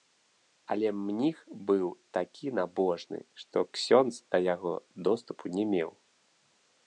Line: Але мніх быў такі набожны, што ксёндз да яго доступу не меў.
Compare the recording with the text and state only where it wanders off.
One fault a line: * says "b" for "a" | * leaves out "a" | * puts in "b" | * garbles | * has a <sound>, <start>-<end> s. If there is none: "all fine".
all fine